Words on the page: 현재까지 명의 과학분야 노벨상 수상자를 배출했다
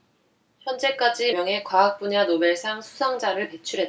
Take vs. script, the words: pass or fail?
pass